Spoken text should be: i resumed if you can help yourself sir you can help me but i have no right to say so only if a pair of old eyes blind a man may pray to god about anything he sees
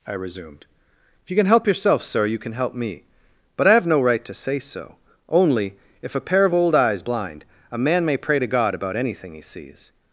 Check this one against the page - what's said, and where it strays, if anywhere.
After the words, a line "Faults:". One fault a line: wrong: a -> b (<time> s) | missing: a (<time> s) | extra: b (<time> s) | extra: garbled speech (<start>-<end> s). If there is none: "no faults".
i resumed if you can help yourself sir you can help me but i have no right to say so only if a pair of old eyes blind a man may pray to god about anything he sees
Faults:
no faults